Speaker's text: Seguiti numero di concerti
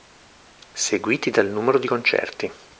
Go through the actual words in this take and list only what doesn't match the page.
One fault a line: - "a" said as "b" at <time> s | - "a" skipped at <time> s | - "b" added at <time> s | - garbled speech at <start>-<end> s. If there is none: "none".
- "dal" added at 1.3 s